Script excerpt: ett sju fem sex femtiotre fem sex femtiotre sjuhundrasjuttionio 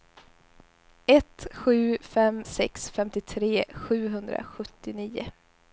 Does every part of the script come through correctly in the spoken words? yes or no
no